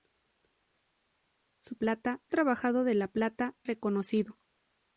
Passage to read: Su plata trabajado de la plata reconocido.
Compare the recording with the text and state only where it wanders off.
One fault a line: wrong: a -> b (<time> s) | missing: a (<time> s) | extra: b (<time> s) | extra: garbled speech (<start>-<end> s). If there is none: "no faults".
no faults